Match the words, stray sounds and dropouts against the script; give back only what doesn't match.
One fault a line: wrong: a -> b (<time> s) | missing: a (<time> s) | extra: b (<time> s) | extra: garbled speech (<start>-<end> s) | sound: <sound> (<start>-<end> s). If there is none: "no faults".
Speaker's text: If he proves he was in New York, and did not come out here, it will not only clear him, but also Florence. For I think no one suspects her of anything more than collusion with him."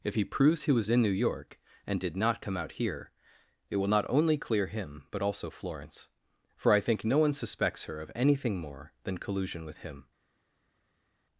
no faults